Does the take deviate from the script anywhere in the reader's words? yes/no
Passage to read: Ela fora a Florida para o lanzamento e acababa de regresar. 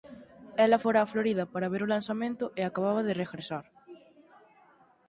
yes